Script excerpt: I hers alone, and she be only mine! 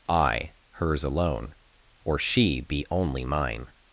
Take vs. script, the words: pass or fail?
fail